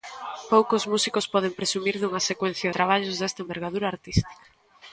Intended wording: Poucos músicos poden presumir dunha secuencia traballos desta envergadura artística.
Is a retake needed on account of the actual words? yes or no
no